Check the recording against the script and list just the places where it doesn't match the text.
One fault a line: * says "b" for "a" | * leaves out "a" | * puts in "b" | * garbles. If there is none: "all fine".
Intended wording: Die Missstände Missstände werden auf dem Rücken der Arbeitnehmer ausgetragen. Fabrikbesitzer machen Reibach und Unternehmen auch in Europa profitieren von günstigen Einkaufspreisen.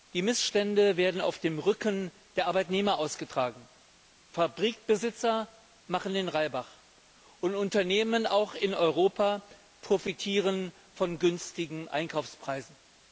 * leaves out "Missstände"
* puts in "den"